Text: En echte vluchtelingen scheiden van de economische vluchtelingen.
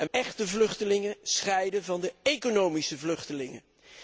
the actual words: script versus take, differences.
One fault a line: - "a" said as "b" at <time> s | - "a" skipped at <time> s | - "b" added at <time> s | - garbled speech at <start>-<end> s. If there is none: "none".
none